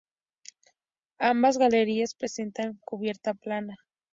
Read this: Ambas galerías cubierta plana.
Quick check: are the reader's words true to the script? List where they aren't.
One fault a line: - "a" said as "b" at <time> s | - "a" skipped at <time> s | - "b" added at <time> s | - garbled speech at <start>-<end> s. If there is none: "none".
- "presentan" added at 2.1 s